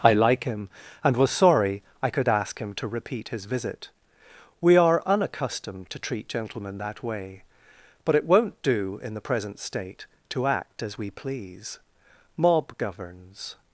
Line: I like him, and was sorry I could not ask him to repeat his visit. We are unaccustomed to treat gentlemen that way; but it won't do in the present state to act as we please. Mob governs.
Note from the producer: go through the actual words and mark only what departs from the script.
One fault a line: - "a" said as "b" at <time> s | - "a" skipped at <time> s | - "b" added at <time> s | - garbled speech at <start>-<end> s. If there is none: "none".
- "not" skipped at 2.3 s